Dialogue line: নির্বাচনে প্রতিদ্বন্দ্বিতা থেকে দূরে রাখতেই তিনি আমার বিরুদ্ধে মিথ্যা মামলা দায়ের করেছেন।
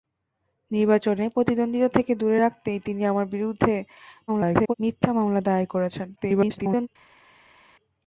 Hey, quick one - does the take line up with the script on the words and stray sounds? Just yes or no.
no